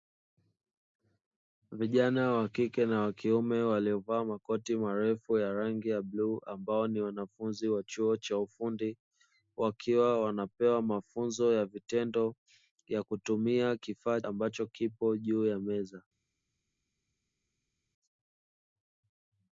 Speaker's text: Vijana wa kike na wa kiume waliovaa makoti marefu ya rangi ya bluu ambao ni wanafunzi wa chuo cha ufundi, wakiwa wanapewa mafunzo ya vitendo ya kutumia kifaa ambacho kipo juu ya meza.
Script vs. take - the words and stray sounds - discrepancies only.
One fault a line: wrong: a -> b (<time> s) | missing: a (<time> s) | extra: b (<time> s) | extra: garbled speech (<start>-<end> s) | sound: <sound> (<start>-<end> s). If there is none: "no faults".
no faults